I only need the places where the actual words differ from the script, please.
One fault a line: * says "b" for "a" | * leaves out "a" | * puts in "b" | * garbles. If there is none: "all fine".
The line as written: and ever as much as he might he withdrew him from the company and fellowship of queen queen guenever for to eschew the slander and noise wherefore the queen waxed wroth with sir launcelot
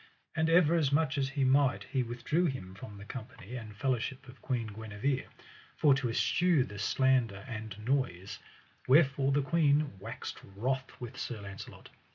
* leaves out "queen"